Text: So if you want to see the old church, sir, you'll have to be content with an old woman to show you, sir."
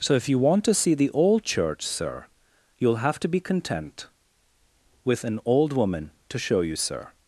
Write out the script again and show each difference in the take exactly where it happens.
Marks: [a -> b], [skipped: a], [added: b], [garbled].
So if you want to see the old church, sir, you'll have to be content with an old woman to show you, sir."